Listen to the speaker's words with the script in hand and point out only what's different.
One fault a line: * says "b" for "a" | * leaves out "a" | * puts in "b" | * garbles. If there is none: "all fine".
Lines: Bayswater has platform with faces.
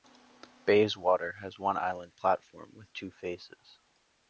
* puts in "one island"
* puts in "two"